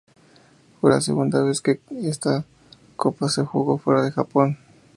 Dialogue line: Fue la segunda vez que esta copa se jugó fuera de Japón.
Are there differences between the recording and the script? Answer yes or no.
no